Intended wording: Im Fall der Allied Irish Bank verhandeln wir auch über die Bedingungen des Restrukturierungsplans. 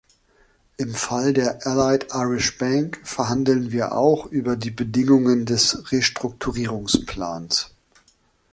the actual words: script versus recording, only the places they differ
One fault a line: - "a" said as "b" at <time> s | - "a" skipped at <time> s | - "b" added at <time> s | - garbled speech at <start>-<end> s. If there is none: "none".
none